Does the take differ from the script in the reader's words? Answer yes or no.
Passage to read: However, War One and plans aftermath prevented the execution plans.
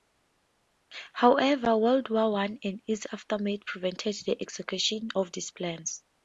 yes